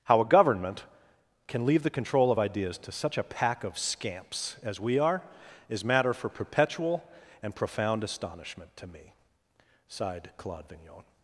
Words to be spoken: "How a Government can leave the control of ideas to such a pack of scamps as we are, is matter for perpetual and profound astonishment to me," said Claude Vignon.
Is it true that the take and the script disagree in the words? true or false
true